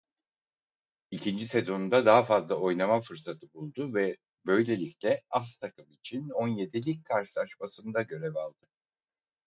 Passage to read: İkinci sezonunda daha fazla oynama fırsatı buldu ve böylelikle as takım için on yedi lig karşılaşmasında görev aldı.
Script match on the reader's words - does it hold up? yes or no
yes